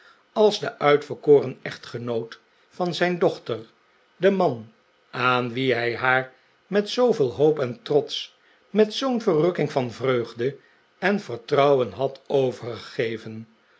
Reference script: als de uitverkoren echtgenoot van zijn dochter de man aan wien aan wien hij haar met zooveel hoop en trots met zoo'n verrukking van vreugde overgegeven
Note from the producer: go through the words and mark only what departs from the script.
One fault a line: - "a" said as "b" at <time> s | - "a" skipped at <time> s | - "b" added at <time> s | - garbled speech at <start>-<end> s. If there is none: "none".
- "aan wien" skipped at 5.7 s
- "en vertrouwen had" added at 11.0 s